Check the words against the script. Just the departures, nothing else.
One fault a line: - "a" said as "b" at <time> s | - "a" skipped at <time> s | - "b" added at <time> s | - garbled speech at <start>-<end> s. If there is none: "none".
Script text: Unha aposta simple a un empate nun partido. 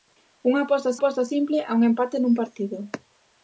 - "aposta" added at 1.0 s